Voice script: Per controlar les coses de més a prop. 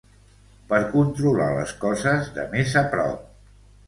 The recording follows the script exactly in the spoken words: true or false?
true